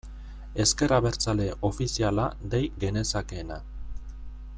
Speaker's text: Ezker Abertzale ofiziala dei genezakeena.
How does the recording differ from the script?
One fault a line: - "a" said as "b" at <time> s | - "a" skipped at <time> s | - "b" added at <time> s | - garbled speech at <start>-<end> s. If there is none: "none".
none